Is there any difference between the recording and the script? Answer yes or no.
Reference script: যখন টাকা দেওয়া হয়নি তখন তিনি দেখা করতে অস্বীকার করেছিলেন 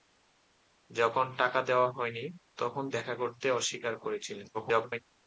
yes